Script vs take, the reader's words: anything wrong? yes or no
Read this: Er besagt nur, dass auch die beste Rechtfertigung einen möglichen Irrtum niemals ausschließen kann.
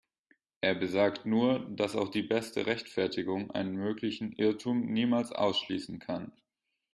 no